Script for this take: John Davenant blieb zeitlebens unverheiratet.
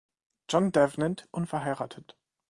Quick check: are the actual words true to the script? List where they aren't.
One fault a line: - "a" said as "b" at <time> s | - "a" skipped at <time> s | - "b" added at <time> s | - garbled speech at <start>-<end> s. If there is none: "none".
- "blieb zeitlebens" skipped at 1.3 s